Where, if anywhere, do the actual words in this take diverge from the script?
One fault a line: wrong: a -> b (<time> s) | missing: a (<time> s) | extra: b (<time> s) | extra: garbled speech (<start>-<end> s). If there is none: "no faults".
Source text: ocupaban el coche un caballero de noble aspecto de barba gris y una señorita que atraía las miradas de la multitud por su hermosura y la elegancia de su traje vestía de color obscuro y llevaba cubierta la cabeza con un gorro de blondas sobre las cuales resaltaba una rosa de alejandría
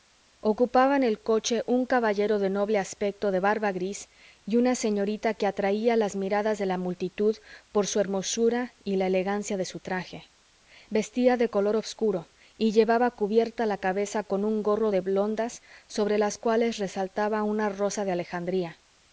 no faults